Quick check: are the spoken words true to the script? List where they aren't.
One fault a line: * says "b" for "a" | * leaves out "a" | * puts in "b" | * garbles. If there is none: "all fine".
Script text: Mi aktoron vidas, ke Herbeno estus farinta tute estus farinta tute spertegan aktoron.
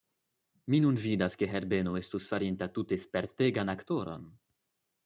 * says "nun" for "aktoron"
* leaves out "estus farinta tute"